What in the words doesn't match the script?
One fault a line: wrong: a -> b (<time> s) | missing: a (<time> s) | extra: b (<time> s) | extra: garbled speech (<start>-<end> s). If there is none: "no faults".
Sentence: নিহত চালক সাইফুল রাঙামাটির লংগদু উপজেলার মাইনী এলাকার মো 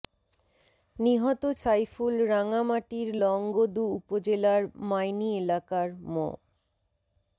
missing: চালক (1.4 s)